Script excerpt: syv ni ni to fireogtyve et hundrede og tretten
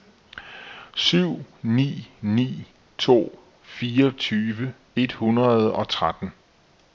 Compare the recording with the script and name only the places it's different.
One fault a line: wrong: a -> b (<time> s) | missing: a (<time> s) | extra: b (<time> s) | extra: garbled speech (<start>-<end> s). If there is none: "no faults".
no faults